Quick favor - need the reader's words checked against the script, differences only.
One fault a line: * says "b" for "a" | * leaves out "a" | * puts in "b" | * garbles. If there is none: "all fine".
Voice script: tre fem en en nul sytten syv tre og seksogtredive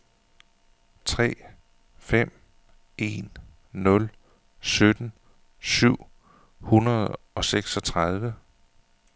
* leaves out "en"
* says "hundrede" for "tre"